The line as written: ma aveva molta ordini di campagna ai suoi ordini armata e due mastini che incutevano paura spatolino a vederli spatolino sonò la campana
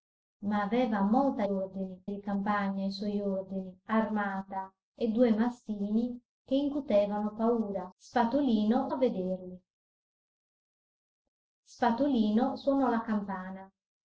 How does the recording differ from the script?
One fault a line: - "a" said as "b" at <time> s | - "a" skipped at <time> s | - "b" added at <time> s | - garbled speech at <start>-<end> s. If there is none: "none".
none